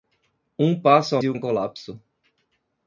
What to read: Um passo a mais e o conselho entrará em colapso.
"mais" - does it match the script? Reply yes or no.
no